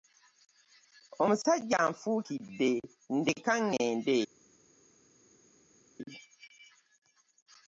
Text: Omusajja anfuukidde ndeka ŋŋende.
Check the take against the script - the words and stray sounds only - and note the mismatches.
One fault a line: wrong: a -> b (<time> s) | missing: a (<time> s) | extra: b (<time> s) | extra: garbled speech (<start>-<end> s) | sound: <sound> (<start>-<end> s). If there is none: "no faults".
no faults